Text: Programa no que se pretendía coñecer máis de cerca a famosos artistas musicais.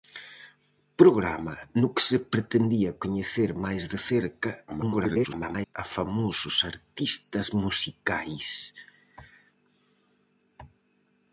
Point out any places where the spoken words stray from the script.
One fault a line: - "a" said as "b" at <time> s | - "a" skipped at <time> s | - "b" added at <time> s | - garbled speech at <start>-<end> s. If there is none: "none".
- garbled speech at 4.7-5.8 s